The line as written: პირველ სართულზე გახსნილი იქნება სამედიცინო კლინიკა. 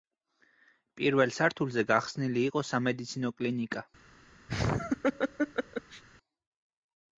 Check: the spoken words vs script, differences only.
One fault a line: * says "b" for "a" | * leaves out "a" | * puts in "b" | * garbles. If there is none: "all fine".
* says "იყო" for "იქნება"